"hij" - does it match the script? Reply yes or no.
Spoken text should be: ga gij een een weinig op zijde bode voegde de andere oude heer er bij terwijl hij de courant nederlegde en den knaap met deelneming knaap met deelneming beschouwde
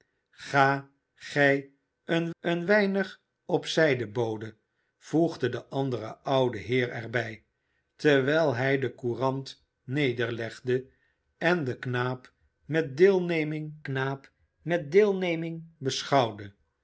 yes